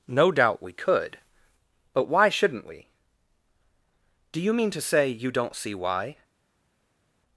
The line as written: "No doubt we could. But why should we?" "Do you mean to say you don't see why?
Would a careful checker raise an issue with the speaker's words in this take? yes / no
yes